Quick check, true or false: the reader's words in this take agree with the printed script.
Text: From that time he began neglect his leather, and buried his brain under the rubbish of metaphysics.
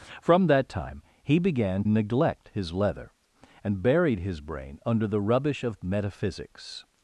true